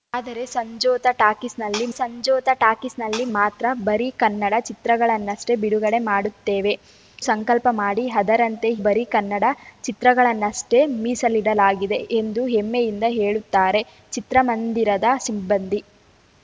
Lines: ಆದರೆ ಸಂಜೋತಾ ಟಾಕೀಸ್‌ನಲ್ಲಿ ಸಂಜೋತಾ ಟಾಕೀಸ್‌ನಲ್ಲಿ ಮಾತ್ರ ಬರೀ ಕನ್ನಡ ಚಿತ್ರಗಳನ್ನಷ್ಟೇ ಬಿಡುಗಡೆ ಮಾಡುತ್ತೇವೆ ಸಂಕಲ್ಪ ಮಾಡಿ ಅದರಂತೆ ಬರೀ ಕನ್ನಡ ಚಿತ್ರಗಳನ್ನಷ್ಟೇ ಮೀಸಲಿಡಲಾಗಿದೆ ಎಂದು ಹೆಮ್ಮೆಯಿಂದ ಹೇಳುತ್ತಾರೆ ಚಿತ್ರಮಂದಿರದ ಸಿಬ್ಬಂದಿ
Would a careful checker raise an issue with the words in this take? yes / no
no